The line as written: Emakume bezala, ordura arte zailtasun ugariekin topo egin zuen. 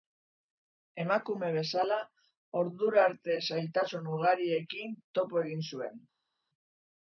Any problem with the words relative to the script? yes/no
no